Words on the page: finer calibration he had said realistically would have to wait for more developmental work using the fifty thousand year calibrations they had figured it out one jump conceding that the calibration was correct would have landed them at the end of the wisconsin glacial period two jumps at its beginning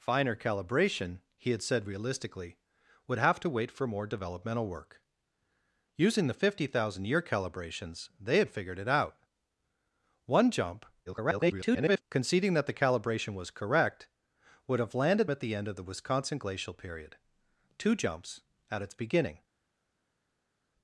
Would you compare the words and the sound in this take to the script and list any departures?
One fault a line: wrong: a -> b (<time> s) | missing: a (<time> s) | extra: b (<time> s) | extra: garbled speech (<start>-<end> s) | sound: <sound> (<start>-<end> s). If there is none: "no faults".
extra: garbled speech (11.1-12.0 s)
missing: them (15.3 s)